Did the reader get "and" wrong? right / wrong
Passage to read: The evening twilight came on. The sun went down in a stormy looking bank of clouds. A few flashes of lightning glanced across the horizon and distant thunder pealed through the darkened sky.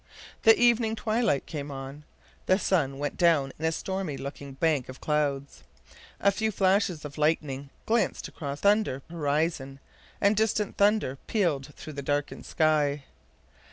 right